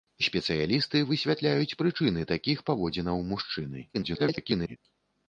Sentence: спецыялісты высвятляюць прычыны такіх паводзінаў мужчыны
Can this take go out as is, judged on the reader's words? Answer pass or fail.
fail